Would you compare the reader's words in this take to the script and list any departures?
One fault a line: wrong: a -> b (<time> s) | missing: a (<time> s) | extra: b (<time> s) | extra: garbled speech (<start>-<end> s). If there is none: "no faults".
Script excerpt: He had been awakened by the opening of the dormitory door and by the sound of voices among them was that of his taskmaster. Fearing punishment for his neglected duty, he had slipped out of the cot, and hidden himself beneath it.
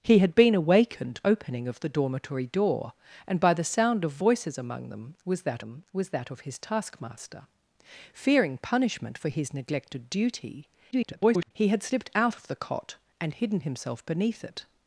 missing: by the (1.2 s)
extra: them was that (5.6 s)
extra: garbled speech (10.9-11.5 s)